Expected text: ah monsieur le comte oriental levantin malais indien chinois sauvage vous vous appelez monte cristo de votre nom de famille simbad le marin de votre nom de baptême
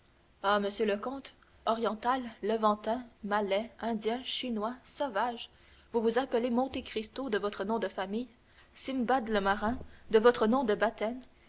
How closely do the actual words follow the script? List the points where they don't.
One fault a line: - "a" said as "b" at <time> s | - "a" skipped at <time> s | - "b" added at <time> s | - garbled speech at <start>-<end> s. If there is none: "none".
none